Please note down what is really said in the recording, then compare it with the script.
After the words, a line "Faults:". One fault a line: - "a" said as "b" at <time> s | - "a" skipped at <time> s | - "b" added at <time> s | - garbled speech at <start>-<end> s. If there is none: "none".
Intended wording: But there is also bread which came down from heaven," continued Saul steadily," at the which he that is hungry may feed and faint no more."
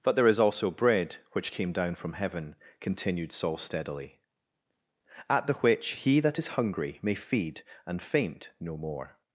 But there is also bread which came down from heaven," continued Saul steadily," at the which he that is hungry may feed and faint no more."
Faults:
none